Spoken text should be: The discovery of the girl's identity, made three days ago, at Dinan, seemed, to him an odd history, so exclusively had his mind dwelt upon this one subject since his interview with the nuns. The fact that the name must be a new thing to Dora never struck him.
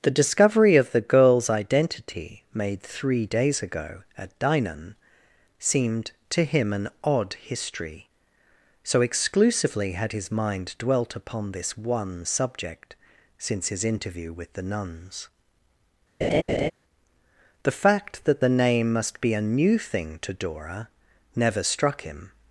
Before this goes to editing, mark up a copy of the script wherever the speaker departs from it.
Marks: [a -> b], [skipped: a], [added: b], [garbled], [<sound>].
The discovery of the girl's identity, made three days ago, at Dinan, seemed, to him an odd history, so exclusively had his mind dwelt upon this one subject since his interview with the nuns. [laugh] The fact that the name must be a new thing to Dora never struck him.